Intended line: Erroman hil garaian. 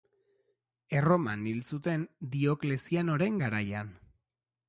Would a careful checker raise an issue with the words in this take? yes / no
yes